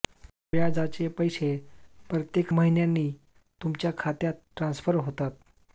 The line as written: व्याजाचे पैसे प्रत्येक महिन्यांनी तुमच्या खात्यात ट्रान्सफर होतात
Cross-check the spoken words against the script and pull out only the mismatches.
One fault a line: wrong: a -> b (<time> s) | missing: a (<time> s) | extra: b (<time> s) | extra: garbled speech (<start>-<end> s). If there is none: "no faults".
no faults